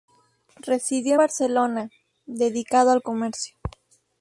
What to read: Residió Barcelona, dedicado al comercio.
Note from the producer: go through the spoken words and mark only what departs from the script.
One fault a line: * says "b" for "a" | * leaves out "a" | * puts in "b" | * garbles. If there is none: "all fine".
all fine